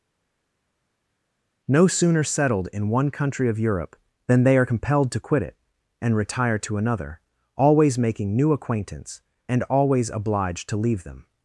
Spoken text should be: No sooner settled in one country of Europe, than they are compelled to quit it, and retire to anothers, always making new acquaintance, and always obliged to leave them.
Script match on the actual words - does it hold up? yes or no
no